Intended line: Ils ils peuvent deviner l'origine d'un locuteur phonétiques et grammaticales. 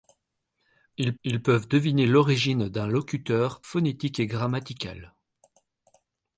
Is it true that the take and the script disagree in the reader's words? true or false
false